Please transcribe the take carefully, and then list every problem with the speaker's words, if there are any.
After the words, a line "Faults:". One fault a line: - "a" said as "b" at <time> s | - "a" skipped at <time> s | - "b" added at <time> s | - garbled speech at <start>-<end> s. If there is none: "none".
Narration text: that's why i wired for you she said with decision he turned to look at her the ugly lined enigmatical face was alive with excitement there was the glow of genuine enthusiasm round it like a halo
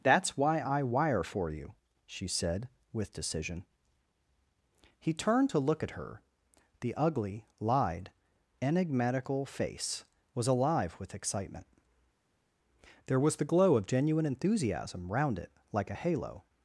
that's why i wire for you she said with decision he turned to look at her the ugly lied enigmatical face was alive with excitement there was the glow of genuine enthusiasm round it like a halo
Faults:
- "wired" said as "wire" at 0.8 s
- "lined" said as "lied" at 7.6 s